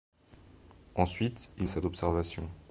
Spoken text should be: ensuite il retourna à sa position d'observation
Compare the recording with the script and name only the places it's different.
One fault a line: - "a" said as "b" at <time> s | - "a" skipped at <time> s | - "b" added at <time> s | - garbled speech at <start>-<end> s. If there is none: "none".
- "retourna" skipped at 1.7 s
- "position" skipped at 1.8 s